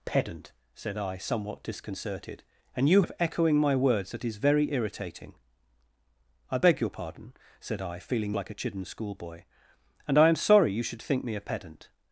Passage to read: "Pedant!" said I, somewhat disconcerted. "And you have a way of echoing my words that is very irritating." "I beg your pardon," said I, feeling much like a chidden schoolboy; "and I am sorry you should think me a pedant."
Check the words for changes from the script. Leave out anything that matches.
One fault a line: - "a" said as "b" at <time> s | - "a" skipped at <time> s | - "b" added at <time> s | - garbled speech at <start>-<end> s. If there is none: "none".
- "have a way" skipped at 3.0 s
- "much" skipped at 8.4 s